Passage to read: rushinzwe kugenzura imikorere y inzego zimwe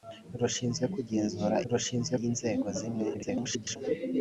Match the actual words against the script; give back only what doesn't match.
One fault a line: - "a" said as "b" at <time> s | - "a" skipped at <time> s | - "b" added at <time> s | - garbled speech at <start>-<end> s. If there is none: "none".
- "imikorere" said as "rushinzwe" at 1.7 s
- garbled speech at 3.1-3.8 s